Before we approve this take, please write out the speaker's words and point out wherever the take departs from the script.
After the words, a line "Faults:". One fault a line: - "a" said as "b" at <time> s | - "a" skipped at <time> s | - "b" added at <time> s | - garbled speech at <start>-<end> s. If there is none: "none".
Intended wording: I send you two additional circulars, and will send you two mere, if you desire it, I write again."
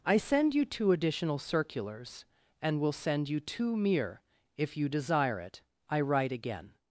I send you two additional circulars, and will send you two mere, if you desire it, I write again."
Faults:
none